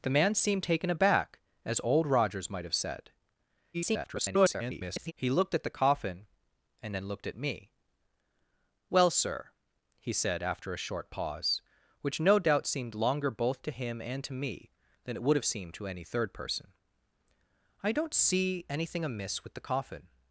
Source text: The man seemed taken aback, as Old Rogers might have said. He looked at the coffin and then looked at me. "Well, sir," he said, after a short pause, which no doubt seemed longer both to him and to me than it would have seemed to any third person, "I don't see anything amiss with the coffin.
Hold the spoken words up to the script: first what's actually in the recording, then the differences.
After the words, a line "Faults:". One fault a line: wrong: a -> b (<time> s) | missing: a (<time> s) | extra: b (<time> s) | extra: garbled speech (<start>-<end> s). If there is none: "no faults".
The man seemed taken aback, as Old Rogers might have said. [garbled] He looked at the coffin and then looked at me. "Well, sir," he said, after a short pause, which no doubt seemed longer both to him and to me than it would have seemed to any third person, "I don't see anything amiss with the coffin.
Faults:
extra: garbled speech (3.7-5.1 s)